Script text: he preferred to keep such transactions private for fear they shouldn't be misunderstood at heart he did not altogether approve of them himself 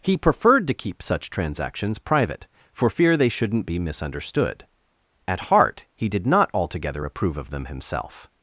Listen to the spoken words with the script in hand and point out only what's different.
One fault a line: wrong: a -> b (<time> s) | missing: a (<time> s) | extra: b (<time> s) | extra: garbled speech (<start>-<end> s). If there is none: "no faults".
no faults